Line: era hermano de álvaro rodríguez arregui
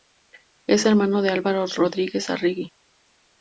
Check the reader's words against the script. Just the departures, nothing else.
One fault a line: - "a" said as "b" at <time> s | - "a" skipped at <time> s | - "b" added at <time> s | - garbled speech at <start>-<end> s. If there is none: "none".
- "era" said as "es" at 0.7 s